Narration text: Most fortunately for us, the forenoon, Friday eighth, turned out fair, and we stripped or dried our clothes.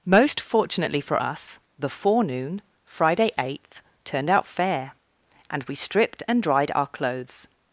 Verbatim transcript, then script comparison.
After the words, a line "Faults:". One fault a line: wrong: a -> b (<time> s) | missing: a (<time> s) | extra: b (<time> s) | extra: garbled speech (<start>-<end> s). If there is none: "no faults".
Most fortunately for us, the forenoon, Friday eighth, turned out fair, and we stripped and dried our clothes.
Faults:
wrong: or -> and (6.3 s)